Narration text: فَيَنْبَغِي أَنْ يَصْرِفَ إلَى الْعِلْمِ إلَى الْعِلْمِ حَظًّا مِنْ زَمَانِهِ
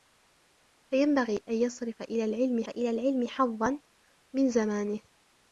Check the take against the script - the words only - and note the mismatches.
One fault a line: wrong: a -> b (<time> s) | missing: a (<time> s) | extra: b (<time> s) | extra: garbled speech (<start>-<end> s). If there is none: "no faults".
no faults